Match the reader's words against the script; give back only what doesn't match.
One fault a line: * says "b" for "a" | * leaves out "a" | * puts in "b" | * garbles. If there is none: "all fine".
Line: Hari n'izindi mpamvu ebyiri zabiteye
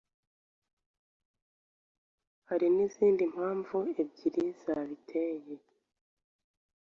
all fine